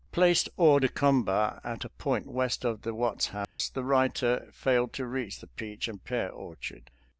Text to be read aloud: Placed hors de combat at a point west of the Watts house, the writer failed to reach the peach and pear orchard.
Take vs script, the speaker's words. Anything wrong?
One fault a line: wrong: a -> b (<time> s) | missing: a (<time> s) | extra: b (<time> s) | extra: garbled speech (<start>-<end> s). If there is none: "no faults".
no faults